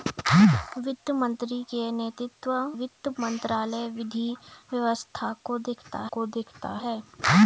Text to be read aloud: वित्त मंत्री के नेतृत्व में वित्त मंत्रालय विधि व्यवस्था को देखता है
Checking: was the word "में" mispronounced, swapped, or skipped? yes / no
yes